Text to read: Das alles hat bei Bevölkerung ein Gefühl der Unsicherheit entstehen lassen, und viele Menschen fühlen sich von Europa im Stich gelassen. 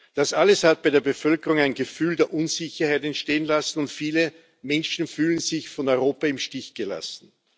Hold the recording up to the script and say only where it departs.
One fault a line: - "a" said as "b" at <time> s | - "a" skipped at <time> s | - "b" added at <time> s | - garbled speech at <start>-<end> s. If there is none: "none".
- "der" added at 0.9 s